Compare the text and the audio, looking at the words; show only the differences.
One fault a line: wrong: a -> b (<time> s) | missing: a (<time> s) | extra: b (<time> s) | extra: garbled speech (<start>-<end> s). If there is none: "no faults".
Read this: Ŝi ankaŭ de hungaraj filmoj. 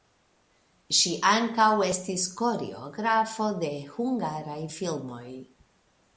extra: estis koreografo (1.9 s)